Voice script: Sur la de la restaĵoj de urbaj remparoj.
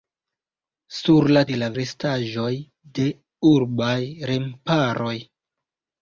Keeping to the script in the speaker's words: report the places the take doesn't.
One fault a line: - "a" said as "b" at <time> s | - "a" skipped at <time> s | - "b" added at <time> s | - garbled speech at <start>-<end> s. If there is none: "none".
none